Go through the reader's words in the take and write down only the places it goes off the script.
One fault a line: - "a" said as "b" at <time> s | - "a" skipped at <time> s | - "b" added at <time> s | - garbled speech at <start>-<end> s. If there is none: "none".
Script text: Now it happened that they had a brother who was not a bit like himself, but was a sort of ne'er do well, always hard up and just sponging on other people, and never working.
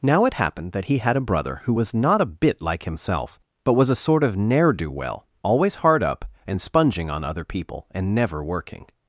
- "they" said as "he" at 0.8 s
- "just" skipped at 6.6 s